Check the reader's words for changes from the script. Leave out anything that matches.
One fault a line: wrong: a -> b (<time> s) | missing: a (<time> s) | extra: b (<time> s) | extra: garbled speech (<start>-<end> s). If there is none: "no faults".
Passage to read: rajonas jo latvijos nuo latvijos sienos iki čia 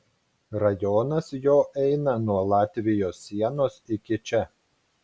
wrong: latvijos -> eina (1.8 s)